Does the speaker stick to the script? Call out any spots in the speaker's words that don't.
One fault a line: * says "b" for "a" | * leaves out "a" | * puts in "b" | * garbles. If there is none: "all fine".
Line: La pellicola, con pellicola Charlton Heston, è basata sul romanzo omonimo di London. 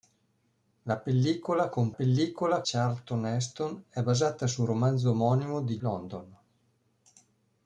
all fine